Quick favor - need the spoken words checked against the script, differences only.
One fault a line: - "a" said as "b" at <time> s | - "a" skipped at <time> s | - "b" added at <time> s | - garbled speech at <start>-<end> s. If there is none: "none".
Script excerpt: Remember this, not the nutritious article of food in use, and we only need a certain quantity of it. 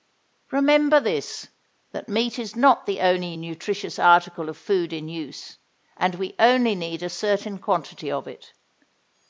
- "that meat is" added at 1.9 s
- "only" added at 3.0 s